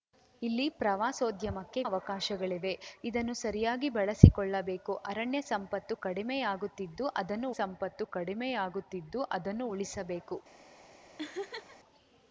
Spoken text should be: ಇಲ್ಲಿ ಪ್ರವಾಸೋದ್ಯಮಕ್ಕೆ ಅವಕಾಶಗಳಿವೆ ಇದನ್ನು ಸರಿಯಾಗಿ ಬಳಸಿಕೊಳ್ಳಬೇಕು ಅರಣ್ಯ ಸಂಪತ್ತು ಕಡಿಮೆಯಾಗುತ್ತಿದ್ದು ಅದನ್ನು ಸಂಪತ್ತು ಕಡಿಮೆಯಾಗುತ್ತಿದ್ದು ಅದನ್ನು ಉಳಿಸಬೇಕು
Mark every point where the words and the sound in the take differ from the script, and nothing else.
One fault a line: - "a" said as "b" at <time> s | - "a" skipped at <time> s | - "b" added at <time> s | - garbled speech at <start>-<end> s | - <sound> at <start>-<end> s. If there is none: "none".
- laugh at 11.2-11.8 s